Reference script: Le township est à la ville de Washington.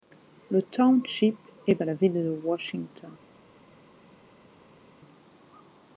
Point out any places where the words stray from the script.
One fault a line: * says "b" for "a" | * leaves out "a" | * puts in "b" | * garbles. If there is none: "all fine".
all fine